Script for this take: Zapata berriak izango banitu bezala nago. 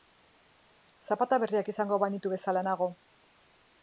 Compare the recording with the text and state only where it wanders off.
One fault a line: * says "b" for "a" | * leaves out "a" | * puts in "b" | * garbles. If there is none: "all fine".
all fine